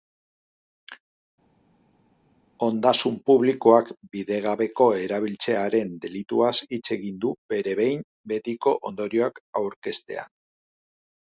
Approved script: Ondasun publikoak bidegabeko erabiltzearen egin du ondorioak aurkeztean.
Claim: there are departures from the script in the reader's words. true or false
true